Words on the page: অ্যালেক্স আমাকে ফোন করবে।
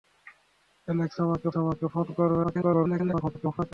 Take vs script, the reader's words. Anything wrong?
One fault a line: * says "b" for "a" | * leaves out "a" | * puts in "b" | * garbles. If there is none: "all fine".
* puts in "আমাকে"
* garbles